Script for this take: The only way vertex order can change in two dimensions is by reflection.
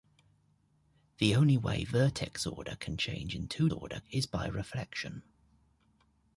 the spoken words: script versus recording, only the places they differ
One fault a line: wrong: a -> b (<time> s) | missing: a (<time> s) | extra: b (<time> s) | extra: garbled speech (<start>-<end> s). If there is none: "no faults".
wrong: dimensions -> order (3.7 s)